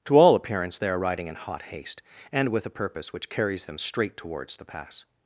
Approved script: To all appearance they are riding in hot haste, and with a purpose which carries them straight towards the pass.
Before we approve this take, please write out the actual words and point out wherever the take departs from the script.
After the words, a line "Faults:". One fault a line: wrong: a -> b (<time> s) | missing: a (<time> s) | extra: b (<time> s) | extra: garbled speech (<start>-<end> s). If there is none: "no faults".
To all appearance they are riding in hot haste, and with a purpose which carries them straight towards the pass.
Faults:
no faults